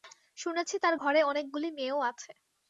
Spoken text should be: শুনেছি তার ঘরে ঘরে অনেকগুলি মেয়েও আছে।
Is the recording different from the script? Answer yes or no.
yes